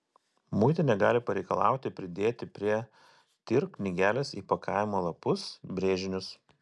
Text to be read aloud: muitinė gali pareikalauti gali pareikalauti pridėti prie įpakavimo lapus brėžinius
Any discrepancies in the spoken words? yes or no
yes